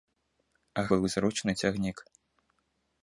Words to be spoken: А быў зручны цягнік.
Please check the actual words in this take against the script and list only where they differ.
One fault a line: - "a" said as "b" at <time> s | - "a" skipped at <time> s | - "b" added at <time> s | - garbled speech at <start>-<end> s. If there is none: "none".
none